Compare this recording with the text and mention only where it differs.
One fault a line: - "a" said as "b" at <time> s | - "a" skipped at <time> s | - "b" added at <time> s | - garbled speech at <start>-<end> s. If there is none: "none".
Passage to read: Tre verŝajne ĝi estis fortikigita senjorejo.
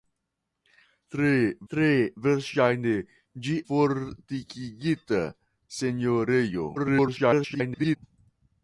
- "tre" added at 1.7 s
- "estis" skipped at 3.6 s
- garbled speech at 6.8-8.0 s